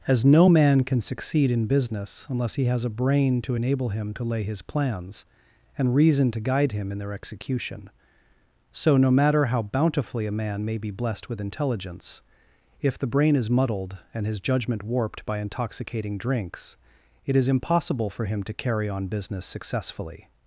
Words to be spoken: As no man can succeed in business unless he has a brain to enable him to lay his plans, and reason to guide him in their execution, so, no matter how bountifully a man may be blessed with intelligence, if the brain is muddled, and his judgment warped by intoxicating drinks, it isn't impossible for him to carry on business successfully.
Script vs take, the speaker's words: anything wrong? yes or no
yes